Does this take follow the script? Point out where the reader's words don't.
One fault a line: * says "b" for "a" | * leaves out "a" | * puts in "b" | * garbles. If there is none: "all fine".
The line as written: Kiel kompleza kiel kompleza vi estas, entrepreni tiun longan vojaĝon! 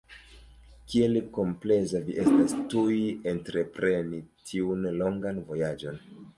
* leaves out "kiel kompleza"
* puts in "tuj"